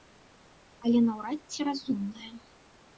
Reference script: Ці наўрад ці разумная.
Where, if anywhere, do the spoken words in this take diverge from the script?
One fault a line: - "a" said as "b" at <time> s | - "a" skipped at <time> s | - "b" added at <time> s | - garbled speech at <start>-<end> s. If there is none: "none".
- "Ці" said as "Але" at 0.9 s